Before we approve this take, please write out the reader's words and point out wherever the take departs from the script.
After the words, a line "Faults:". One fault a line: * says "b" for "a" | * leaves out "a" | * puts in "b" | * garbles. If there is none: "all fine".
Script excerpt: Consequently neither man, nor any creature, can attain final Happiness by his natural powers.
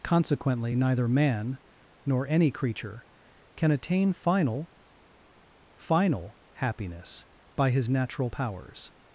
Consequently neither man, nor any creature, can attain final final Happiness by his natural powers.
Faults:
* puts in "final"